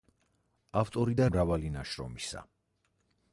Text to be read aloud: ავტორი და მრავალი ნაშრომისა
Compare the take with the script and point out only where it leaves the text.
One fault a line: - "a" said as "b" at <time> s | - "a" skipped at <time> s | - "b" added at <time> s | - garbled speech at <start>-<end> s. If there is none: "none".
none